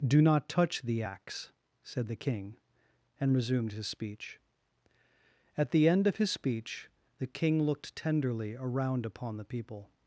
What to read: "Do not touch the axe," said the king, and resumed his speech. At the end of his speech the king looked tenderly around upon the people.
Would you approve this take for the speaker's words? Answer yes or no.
yes